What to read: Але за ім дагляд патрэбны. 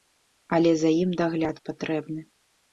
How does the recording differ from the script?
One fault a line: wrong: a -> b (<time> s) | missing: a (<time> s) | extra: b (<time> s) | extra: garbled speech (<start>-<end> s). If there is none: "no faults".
no faults